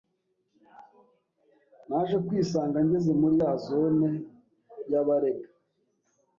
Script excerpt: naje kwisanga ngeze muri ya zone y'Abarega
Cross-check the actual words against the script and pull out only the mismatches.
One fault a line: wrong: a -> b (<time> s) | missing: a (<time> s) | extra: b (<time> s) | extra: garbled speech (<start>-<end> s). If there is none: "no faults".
no faults